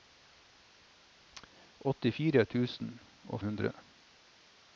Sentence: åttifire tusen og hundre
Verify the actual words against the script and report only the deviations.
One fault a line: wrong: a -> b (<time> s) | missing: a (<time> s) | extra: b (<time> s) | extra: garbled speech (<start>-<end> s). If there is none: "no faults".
no faults